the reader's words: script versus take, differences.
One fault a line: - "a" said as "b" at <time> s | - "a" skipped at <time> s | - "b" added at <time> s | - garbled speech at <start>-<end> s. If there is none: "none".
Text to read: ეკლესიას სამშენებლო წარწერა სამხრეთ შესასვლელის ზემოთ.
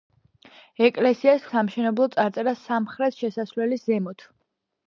none